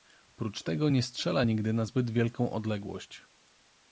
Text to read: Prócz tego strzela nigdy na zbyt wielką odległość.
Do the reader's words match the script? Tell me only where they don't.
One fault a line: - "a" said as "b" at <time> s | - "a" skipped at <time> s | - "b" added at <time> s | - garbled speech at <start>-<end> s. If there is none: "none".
- "nie" added at 0.9 s